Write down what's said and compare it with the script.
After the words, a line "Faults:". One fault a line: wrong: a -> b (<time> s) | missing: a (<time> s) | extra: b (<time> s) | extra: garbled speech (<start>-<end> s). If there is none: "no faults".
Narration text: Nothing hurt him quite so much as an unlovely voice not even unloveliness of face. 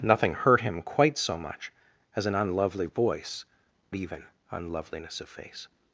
Nothing hurt him quite so much as an unlovely voice even unloveliness of face.
Faults:
missing: not (3.5 s)